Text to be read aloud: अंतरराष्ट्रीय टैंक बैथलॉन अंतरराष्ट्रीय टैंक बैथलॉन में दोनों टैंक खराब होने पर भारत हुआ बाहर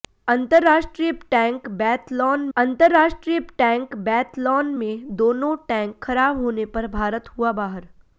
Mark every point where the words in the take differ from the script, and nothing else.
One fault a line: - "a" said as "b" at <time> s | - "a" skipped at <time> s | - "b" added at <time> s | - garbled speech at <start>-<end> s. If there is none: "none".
none